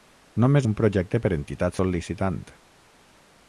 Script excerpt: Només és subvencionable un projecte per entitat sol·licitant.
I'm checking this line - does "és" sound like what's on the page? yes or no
no